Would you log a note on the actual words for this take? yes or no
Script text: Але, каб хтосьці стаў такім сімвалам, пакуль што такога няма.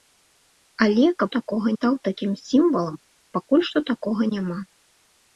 yes